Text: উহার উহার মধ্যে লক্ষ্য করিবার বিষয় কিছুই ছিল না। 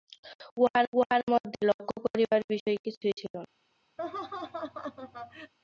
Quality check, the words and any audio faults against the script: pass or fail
fail